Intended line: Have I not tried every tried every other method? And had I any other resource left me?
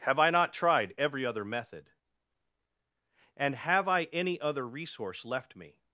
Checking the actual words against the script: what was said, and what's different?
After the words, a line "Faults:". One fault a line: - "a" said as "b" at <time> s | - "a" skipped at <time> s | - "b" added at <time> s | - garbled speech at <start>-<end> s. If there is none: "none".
Have I not tried every other method? And have I any other resource left me?
Faults:
- "tried every" skipped at 1.3 s
- "had" said as "have" at 3.5 s